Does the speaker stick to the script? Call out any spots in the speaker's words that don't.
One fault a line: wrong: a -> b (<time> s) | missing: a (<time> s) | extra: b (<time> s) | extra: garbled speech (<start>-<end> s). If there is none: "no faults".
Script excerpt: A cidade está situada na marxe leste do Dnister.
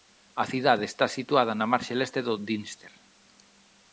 no faults